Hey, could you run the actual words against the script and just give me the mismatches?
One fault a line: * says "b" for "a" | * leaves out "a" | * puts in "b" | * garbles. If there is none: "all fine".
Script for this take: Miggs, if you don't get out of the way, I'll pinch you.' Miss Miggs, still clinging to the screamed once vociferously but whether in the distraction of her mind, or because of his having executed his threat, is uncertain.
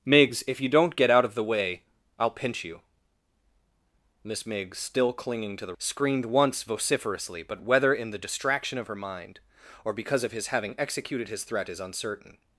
all fine